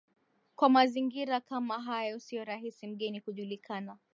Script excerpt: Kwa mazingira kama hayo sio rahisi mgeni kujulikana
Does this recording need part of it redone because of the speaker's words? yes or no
no